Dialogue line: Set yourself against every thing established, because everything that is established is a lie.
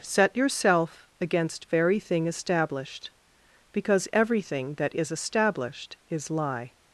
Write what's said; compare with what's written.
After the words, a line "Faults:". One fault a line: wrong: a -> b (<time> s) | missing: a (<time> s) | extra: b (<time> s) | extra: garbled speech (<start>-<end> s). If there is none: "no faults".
Set yourself against very thing established, because everything that is established is lie.
Faults:
wrong: every -> very (1.7 s)
missing: a (6.3 s)